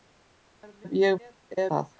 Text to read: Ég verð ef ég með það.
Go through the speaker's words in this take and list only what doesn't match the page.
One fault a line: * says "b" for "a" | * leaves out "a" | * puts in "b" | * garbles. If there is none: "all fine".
all fine